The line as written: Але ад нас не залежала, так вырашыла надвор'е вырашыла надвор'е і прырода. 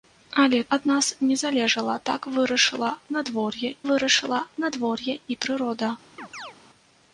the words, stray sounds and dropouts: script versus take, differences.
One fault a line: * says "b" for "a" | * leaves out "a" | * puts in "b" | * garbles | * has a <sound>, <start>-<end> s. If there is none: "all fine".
* has a chirp, 6.2-6.6 s